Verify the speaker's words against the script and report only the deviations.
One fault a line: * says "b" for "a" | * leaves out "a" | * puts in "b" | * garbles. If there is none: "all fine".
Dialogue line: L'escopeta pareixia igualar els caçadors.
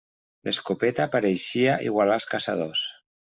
all fine